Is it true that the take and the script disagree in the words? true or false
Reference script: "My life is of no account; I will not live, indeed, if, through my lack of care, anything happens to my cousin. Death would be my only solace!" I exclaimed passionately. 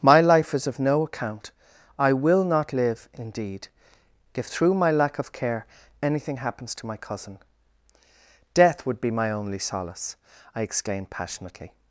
false